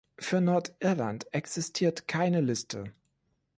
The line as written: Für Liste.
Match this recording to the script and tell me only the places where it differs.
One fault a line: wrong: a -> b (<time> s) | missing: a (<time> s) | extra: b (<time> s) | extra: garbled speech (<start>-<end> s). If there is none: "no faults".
extra: Nordirland existiert keine (0.4 s)